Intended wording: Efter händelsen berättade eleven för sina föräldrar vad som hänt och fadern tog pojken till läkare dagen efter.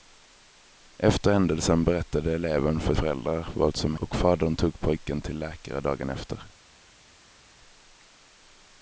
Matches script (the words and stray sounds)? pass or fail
fail